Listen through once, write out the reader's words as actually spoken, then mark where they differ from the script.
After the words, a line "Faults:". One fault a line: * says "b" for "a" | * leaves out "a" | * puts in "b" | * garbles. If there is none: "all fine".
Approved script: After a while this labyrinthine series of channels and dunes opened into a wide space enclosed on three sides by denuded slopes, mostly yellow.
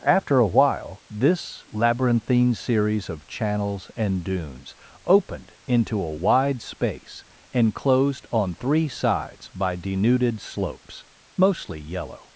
After a while this labyrinthine series of channels and dunes opened into a wide space enclosed on three sides by denuded slopes, mostly yellow.
Faults:
all fine